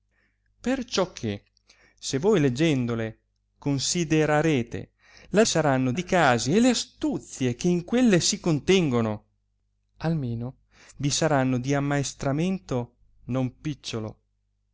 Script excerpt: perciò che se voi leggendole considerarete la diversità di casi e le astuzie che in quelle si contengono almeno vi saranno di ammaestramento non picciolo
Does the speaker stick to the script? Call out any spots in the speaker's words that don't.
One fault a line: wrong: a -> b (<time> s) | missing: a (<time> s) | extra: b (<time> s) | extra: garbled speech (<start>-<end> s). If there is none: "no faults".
wrong: diversità -> saranno (5.4 s)